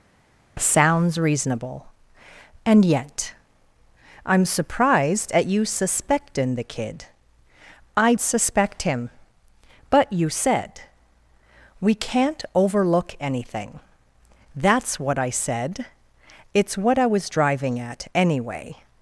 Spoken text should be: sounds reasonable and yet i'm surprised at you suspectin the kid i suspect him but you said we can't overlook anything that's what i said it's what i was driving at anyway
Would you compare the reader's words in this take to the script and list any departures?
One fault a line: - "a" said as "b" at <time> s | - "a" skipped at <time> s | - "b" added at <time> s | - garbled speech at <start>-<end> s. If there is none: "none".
none